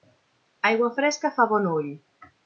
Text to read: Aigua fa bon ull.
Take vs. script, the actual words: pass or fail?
fail